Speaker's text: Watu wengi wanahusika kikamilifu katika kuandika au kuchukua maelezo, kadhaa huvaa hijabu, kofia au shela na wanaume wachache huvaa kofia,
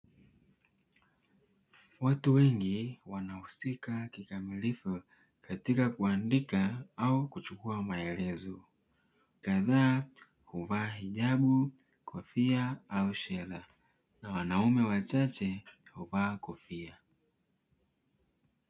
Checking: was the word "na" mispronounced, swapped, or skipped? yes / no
no